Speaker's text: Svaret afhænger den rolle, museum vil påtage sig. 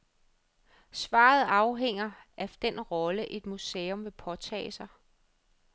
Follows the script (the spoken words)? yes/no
no